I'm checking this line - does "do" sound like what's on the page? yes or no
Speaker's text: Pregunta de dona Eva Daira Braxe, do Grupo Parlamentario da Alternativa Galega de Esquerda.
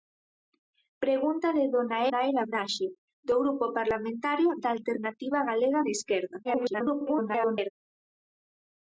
yes